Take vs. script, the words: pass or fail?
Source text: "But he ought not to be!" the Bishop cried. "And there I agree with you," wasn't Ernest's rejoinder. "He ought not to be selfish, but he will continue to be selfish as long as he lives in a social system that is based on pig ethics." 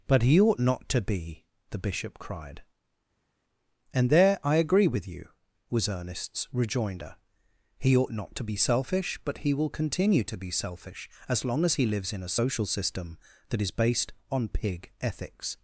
fail